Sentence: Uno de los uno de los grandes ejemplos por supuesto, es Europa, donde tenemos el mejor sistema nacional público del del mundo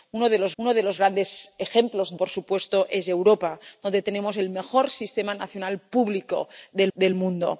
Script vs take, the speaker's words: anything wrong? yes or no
no